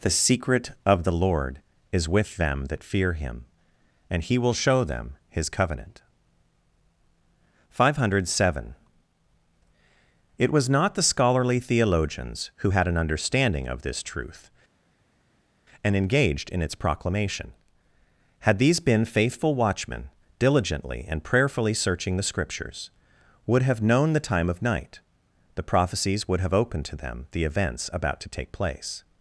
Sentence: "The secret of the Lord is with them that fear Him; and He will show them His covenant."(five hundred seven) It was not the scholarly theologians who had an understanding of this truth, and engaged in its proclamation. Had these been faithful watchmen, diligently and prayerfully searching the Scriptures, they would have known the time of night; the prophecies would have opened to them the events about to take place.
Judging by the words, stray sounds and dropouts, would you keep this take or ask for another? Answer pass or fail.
fail